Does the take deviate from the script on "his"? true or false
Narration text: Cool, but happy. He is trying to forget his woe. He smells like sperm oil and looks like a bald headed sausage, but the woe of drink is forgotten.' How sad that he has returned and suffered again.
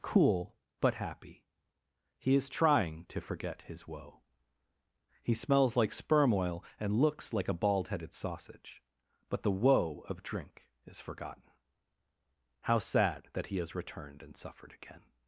false